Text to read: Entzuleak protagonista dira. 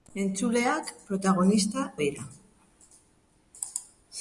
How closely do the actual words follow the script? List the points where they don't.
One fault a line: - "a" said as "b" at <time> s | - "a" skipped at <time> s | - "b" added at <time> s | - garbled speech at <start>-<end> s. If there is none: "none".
none